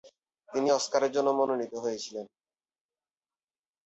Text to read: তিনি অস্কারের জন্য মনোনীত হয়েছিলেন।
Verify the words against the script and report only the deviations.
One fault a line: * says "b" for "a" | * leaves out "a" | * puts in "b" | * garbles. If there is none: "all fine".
all fine